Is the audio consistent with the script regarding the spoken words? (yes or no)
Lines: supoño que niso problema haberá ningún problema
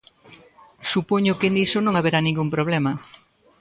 no